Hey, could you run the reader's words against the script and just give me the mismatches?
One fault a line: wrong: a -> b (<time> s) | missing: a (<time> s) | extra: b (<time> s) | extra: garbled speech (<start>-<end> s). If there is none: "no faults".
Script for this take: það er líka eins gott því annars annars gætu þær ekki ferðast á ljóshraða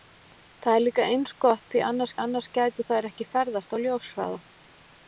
no faults